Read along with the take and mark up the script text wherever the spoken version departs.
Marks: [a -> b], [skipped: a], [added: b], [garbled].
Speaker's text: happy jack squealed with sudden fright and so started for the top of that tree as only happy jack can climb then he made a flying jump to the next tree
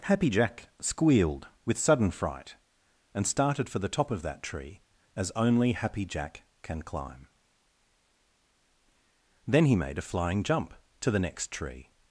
happy jack squealed with sudden fright and [skipped: so] started for the top of that tree as only happy jack can climb then he made a flying jump to the next tree